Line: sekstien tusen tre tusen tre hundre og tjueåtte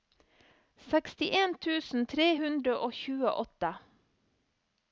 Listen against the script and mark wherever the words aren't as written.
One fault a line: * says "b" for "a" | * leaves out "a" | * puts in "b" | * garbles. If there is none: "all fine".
* leaves out "tusen tre"